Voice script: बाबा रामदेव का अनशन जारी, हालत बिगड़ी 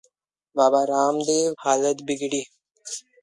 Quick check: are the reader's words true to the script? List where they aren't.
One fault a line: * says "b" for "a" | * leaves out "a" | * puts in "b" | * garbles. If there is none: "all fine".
* leaves out "का अनशन जारी"